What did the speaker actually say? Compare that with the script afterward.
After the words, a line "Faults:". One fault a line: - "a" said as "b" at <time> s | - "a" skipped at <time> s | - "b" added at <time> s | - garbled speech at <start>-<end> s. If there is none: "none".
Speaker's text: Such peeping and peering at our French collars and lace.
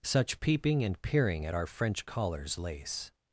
Such peeping and peering at our French collars lace.
Faults:
- "and" skipped at 2.6 s